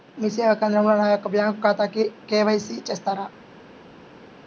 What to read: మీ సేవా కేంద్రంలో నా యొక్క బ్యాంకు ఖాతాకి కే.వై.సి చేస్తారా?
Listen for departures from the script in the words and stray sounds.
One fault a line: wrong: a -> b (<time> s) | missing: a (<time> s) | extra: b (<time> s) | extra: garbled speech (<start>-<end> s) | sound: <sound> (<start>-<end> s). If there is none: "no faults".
no faults